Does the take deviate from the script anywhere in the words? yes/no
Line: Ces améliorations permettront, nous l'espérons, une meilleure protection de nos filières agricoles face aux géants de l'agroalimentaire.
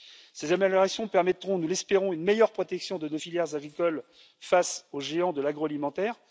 no